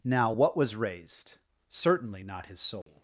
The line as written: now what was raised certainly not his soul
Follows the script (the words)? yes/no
yes